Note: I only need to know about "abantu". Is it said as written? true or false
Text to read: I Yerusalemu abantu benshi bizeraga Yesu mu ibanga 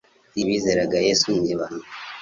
false